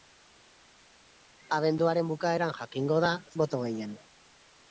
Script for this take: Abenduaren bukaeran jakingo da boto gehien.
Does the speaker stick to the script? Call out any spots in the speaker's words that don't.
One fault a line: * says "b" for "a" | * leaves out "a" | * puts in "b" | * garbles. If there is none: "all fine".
all fine